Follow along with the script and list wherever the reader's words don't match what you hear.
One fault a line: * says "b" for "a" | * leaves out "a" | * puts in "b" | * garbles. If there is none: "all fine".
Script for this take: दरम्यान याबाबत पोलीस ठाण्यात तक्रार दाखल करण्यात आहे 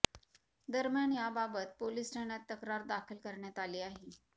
* puts in "आली"